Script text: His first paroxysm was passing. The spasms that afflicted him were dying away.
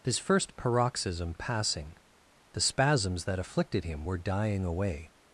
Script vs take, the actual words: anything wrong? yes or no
yes